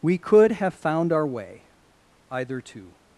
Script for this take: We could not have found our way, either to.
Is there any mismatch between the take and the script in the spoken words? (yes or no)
yes